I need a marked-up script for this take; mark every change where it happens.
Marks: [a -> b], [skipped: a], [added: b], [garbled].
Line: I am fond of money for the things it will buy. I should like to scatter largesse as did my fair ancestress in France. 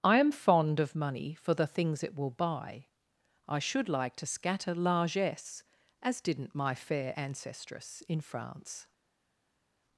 I am fond of money for the things it will buy. I should like to scatter largesse as [did -> didn't] my fair ancestress in France.